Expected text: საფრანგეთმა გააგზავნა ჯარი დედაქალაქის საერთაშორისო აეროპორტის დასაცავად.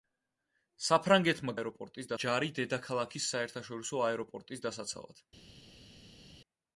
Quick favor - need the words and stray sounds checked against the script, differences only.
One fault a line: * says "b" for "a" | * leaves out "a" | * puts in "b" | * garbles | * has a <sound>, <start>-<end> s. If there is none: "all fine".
* says "აეროპორტის" for "გააგზავნა"